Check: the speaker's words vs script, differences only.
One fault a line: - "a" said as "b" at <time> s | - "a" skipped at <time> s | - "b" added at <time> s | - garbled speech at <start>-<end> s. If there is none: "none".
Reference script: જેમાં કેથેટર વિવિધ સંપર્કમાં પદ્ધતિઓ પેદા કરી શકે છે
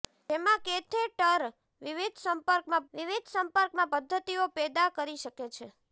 - "વિવિધ સંપર્કમાં" added at 2.9 s